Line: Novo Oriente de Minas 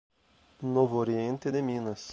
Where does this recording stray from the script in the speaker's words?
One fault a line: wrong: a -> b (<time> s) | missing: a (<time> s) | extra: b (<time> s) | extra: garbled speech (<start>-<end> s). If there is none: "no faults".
no faults